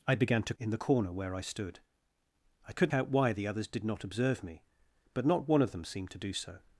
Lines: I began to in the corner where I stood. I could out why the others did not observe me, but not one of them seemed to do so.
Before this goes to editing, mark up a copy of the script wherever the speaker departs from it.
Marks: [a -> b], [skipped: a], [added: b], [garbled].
I began to in the corner where I stood. I could out why the others did not observe me, but not one of them seemed to do so.